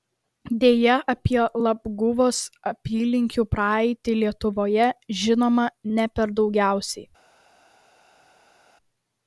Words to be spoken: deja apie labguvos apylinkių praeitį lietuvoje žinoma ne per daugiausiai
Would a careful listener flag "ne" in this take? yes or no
no